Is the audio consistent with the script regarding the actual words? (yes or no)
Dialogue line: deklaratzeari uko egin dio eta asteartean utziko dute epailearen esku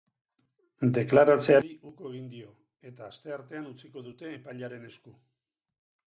yes